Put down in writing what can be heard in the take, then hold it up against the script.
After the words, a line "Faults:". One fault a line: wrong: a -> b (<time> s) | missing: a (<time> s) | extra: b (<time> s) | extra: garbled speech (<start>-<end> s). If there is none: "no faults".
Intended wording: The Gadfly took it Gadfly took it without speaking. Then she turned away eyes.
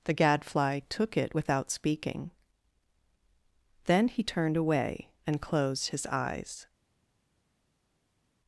The Gadfly took it without speaking. Then he turned away and closed his eyes.
Faults:
missing: Gadfly took it (1.4 s)
wrong: she -> he (4.1 s)
extra: and closed his (5.2 s)